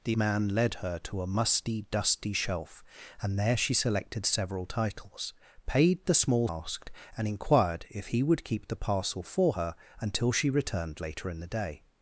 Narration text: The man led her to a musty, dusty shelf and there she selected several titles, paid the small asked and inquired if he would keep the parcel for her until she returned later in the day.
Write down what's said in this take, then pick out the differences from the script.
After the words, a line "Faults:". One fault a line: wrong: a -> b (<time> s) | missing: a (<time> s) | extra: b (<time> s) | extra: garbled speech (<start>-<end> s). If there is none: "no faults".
The man led her to a musty, dusty shelf and there she selected several titles, paid the small asked and inquired if he would keep the parcel for her until she returned later in the day.
Faults:
no faults